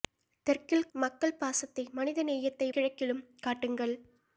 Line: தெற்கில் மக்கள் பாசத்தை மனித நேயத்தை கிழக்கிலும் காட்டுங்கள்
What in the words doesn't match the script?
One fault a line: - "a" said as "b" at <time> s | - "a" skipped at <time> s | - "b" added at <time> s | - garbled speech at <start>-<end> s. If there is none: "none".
none